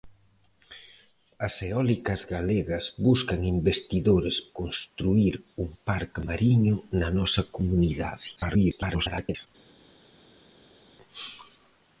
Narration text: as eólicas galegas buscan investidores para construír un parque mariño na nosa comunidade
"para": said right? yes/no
no